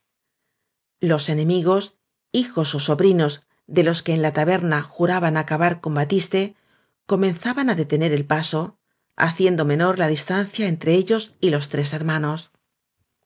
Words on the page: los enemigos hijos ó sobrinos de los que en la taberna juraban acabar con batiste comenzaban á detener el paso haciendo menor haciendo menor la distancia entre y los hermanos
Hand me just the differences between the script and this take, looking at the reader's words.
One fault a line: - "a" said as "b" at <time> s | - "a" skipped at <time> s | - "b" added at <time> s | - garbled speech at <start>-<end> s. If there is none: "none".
- "haciendo menor" skipped at 9.9 s
- "ellos" added at 11.0 s
- "tres" added at 11.7 s